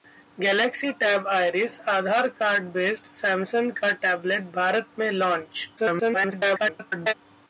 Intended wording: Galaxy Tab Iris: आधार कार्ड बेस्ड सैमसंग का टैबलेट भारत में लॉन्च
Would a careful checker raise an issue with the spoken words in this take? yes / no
yes